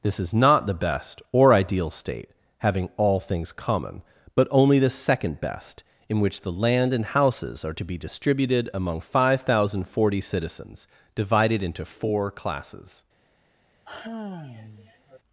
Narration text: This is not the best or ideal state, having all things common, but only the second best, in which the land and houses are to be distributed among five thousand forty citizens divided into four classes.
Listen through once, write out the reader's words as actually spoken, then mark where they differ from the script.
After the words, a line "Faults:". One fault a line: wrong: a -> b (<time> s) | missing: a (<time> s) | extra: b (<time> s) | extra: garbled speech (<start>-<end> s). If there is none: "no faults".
This is not the best or ideal state, having all things common, but only the second best, in which the land and houses are to be distributed among five thousand forty citizens divided into four classes.
Faults:
no faults